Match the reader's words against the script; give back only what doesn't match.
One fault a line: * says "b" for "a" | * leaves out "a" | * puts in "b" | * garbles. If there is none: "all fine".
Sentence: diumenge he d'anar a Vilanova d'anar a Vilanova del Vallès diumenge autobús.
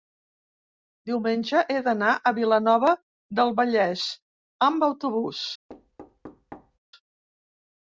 * leaves out "d'anar a Vilanova"
* says "amb" for "diumenge"